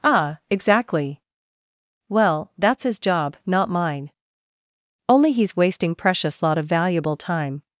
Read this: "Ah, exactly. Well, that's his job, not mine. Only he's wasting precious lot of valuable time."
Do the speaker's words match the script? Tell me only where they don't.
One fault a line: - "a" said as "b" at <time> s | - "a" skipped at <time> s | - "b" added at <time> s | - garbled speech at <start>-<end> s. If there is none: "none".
none